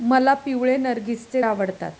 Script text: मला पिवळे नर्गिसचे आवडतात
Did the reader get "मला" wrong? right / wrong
right